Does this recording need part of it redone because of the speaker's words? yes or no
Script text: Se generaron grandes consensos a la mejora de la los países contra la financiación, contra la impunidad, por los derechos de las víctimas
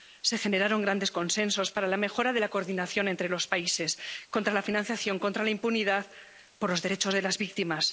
yes